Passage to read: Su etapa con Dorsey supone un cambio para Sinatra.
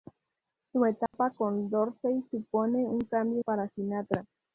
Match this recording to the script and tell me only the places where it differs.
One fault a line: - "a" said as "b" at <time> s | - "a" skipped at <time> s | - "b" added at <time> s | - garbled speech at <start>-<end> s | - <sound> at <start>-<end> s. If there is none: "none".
- dropout at 1.1-1.1 s